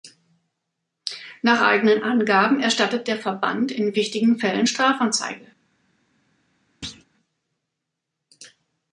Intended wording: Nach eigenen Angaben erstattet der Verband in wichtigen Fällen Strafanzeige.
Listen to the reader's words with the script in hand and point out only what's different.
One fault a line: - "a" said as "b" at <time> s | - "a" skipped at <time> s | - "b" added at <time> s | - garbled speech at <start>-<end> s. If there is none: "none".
none